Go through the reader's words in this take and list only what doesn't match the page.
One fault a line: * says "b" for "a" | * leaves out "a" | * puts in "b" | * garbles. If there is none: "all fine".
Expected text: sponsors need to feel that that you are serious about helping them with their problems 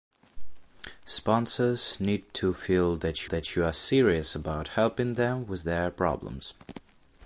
all fine